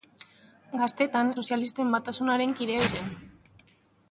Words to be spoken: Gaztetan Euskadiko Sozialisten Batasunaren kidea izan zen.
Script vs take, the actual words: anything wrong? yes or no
yes